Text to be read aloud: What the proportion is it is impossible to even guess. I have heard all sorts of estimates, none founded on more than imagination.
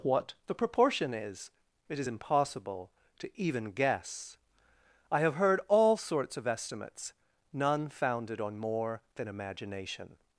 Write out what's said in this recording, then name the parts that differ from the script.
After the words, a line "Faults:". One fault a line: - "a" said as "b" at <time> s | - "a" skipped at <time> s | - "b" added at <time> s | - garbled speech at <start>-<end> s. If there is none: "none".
What the proportion is it is impossible to even guess. I have heard all sorts of estimates, none founded on more than imagination.
Faults:
none